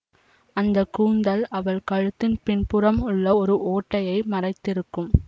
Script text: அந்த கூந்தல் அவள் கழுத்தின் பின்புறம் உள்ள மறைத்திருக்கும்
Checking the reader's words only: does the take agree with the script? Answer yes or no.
no